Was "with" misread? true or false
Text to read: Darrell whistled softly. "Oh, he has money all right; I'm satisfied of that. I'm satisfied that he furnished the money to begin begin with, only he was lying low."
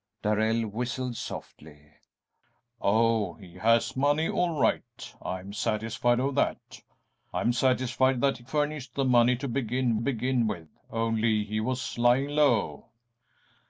false